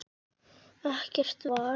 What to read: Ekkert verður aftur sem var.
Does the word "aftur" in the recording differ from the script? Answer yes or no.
yes